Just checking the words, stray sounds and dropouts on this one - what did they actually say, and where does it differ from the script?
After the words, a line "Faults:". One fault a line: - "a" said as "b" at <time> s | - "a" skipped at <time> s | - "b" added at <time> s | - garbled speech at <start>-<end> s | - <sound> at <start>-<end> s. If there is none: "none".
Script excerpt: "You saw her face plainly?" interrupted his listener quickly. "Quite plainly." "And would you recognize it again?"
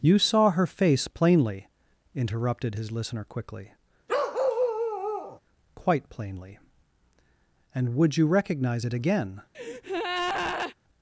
"You saw her face plainly?" interrupted his listener quickly. "Quite plainly." "And would you recognize it again?"
Faults:
- bark at 4.1-5.4 s
- breath at 9.5-10.7 s